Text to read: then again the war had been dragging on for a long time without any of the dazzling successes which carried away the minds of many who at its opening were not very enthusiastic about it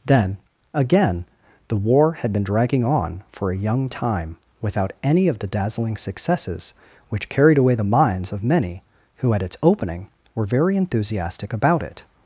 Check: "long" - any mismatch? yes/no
yes